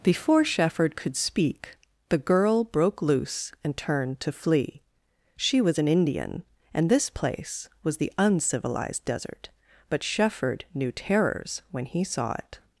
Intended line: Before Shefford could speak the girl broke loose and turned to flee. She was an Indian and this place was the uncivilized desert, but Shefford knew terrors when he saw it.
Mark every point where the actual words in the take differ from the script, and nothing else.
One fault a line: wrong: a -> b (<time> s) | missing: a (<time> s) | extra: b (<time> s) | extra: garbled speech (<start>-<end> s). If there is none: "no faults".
no faults